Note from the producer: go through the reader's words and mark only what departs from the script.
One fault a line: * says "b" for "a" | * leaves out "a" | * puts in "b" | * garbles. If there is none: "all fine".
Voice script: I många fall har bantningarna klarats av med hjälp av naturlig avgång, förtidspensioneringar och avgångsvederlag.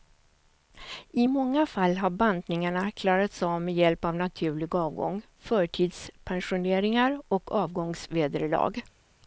all fine